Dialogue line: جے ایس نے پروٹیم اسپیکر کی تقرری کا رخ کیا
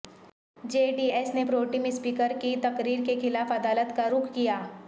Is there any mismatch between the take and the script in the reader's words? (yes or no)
yes